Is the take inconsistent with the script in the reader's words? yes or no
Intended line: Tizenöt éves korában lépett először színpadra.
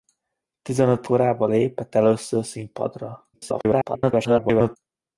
yes